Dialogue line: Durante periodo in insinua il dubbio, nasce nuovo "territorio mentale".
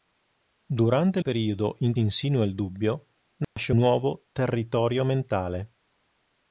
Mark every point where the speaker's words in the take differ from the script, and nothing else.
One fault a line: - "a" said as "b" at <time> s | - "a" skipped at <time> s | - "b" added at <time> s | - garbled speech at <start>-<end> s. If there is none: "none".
none